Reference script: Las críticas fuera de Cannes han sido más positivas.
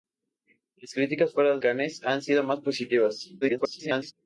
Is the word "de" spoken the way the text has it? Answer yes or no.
no